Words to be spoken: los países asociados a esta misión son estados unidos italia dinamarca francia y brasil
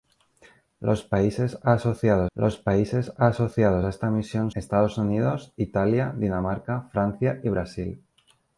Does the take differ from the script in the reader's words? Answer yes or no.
yes